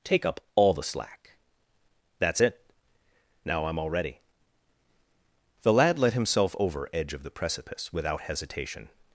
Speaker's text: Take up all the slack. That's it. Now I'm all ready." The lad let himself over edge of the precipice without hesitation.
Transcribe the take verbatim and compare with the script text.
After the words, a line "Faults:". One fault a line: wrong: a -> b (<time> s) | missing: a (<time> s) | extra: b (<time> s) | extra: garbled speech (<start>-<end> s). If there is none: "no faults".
Take up all the slack. That's it. Now I'm all ready." The lad let himself over edge of the precipice without hesitation.
Faults:
no faults